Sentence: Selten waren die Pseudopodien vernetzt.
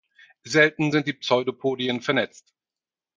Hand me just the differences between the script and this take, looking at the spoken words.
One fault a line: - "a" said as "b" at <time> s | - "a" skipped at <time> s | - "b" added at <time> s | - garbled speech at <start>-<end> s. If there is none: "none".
- "waren" said as "sind" at 0.9 s